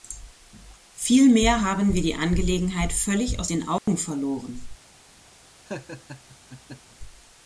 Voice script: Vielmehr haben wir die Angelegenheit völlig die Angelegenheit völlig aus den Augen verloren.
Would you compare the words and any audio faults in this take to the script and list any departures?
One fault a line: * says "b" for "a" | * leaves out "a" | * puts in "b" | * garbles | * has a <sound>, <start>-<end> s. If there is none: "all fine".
* leaves out "die Angelegenheit völlig"
* has a dropout, 3.8-3.9 s
* has a laugh, 5.7-7.0 s